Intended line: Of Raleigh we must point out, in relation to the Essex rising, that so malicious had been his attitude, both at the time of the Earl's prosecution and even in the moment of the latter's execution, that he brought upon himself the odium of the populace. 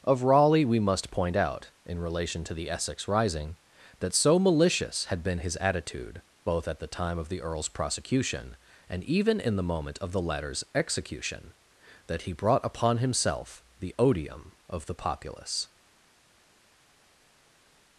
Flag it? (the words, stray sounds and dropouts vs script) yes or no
no